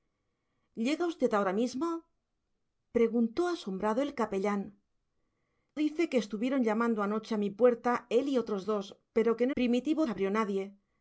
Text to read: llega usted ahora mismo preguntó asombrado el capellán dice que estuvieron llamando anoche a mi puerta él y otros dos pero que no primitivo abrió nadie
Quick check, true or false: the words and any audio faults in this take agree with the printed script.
true